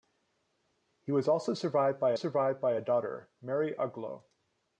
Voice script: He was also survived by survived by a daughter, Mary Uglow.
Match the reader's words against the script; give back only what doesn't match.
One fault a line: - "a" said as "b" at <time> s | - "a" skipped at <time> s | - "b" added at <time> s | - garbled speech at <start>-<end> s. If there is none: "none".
none